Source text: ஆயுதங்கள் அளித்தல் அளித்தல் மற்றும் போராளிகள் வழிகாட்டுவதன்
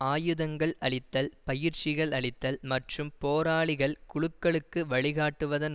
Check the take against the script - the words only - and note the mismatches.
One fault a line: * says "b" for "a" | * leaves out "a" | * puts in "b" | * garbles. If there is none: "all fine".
* puts in "பயிற்சிகள்"
* puts in "குழுக்களுக்கு"